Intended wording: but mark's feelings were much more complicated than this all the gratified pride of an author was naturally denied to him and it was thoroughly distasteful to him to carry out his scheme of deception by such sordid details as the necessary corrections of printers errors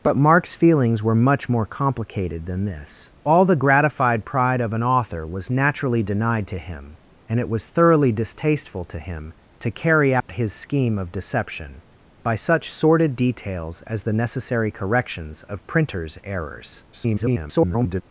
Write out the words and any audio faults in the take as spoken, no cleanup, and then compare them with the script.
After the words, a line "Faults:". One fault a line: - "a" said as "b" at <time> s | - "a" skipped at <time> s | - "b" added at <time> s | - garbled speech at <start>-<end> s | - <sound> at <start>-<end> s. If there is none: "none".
but mark's feelings were much more complicated than this all the gratified pride of an author was naturally denied to him and it was thoroughly distasteful to him to carry out his scheme of deception by such sordid details as the necessary corrections of printers errors [garbled]
Faults:
- dropout at 10.2-10.3 s
- garbled speech at 16.9-18.0 s